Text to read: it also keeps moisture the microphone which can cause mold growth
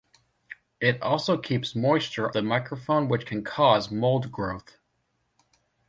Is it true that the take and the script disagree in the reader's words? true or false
false